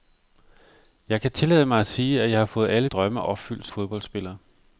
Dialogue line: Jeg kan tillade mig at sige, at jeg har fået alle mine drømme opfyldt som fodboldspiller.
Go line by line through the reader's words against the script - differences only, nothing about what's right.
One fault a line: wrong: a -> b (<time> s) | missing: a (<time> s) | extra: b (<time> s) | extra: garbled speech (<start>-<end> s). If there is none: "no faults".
missing: mine (2.9 s)
missing: som (3.7 s)